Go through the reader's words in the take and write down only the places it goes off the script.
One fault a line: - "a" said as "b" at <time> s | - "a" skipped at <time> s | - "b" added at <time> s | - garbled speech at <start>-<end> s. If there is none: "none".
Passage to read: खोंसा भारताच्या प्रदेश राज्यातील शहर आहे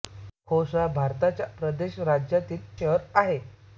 none